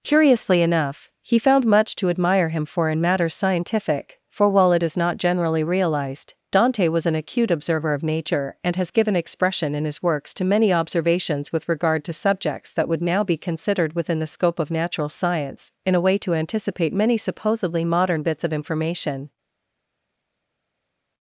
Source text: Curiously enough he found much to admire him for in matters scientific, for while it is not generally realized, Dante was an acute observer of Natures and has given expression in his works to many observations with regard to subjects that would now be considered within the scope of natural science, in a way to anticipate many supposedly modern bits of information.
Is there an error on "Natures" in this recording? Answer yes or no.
yes